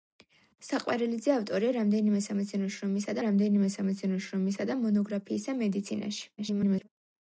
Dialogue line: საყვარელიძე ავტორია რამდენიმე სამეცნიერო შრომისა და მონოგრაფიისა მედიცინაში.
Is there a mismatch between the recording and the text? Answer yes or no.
yes